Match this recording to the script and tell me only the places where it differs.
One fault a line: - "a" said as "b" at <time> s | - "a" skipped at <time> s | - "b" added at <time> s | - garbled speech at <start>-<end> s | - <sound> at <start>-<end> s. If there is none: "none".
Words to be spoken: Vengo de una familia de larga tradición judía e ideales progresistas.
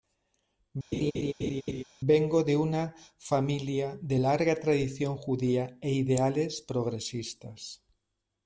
- laugh at 0.9-1.8 s